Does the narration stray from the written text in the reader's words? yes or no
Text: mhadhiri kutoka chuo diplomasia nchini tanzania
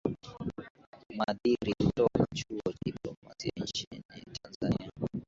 no